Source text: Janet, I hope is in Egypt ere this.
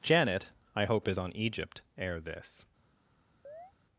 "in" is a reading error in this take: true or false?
true